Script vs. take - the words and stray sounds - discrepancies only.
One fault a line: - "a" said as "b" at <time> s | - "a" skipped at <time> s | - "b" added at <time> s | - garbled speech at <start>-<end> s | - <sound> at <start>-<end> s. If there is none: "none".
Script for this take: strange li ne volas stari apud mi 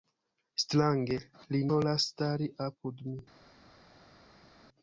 - "ne" skipped at 1.6 s